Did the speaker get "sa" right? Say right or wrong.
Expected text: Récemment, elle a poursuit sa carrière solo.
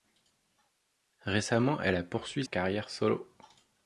wrong